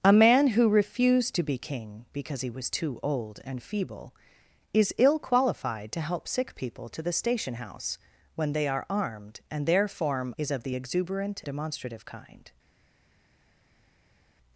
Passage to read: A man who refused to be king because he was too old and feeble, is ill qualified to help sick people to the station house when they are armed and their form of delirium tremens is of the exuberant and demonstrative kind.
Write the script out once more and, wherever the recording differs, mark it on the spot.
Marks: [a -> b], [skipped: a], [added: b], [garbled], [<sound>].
A man who refused to be king because he was too old and feeble, is ill qualified to help sick people to the station house when they are armed and their form [skipped: of delirium tremens] is of the exuberant [skipped: and] demonstrative kind.